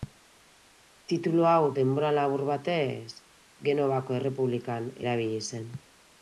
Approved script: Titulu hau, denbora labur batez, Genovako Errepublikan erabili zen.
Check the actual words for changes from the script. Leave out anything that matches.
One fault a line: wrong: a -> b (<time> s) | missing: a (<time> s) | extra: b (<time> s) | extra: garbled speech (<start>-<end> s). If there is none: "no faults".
no faults